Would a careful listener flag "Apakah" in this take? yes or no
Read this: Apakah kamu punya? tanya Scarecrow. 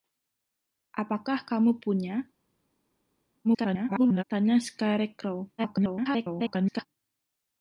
no